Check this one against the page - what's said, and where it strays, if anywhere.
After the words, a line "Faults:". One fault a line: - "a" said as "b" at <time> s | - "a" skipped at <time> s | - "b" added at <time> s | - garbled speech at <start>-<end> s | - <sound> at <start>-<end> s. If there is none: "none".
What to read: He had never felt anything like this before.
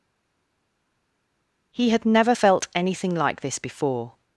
He had never felt anything like this before.
Faults:
none